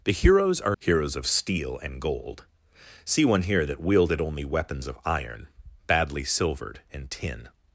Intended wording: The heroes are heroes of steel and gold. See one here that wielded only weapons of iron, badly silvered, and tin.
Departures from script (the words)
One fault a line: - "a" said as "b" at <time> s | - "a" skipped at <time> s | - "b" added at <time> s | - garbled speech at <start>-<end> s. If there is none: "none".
none